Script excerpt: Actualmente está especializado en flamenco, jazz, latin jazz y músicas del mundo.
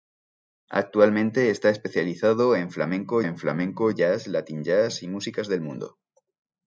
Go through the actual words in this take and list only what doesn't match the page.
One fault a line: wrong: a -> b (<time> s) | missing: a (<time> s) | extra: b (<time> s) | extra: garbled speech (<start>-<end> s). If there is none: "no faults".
extra: en flamenco (3.2 s)